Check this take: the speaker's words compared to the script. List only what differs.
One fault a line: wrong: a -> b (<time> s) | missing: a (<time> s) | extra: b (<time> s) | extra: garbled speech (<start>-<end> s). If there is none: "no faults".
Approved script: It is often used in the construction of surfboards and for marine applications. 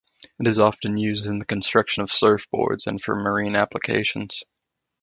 no faults